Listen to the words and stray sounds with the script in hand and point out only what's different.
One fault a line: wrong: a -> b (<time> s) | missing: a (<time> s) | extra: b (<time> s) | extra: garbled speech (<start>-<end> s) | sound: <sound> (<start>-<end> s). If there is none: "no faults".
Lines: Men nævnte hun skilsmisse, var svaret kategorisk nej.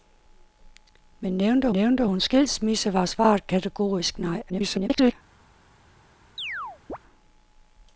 extra: nævnte (1.7 s)
extra: garbled speech (4.5-5.1 s)
sound: chirp (6.4-7.0 s)